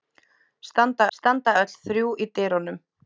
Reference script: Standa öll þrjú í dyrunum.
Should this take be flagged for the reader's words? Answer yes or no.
yes